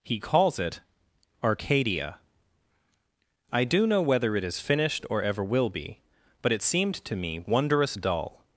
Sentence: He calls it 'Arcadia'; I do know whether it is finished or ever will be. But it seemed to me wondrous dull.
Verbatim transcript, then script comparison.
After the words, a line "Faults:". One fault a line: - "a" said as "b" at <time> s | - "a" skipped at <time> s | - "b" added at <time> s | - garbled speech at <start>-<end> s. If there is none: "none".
He calls it 'Arcadia'; I do know whether it is finished or ever will be. But it seemed to me wondrous dull.
Faults:
none